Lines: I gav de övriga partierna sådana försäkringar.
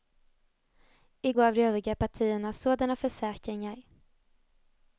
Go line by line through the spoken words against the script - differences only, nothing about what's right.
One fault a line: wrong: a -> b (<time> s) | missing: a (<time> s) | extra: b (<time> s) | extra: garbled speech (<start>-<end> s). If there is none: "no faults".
no faults